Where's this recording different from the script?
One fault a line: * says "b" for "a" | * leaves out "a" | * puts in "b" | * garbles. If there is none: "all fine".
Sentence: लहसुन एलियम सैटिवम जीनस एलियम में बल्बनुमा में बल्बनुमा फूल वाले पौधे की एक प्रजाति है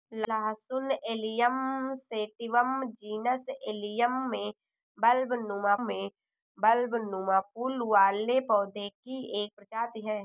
all fine